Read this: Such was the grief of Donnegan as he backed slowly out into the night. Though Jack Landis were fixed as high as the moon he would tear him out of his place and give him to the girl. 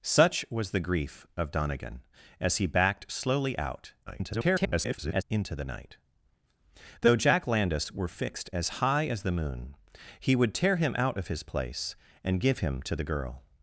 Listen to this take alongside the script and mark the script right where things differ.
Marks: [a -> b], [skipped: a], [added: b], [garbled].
Such was the grief of Donnegan as he backed slowly out [garbled] into the night. Though Jack Landis were fixed as high as the moon he would tear him out of his place and give him to the girl.